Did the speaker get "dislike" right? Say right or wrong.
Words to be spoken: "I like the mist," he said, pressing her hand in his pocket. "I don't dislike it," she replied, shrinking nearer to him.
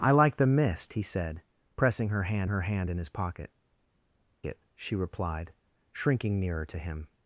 wrong